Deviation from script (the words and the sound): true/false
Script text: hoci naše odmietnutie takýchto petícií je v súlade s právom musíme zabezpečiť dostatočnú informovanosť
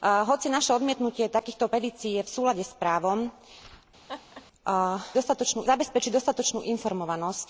true